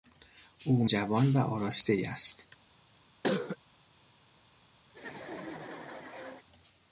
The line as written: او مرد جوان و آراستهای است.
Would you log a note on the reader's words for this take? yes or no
yes